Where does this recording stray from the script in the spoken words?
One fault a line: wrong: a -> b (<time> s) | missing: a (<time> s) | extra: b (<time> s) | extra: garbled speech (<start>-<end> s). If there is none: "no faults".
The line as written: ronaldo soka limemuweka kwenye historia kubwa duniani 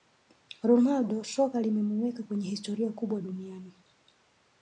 no faults